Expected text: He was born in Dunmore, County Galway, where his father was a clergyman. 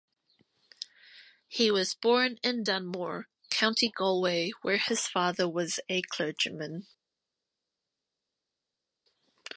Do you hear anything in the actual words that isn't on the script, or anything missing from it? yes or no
no